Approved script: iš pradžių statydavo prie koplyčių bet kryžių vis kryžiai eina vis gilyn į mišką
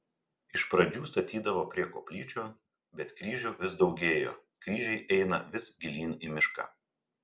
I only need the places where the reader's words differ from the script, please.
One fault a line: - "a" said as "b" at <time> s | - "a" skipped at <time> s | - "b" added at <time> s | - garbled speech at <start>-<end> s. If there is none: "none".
- "daugėjo" added at 3.9 s